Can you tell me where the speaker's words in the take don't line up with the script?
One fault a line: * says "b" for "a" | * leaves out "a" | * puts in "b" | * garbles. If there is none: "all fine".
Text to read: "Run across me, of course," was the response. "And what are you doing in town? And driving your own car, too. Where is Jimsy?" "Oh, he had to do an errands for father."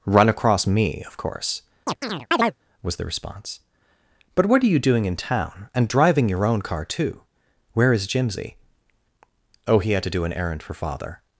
* says "But" for "And"
* says "errand" for "errands"